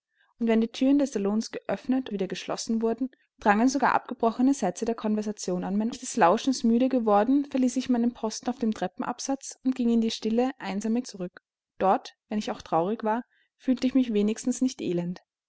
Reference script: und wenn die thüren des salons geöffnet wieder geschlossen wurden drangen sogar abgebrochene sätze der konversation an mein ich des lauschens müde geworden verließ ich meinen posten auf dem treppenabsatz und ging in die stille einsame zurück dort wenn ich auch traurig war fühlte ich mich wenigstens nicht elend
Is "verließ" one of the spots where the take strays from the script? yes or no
no